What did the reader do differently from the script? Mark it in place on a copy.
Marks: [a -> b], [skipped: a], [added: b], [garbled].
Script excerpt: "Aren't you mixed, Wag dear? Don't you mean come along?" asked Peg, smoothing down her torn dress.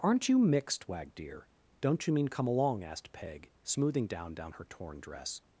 "Aren't you mixed, Wag dear? Don't you mean come along?" asked Peg, smoothing down [added: down] her torn dress.